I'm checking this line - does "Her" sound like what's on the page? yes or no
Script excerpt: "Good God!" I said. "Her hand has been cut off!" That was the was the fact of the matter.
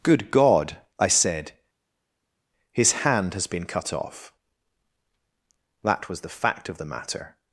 no